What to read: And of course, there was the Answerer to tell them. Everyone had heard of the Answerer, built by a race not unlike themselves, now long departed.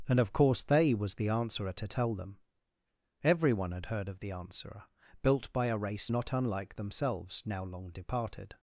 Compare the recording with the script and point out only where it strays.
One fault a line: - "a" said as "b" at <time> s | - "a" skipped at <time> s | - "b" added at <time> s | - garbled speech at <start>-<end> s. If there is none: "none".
- "there" said as "they" at 0.6 s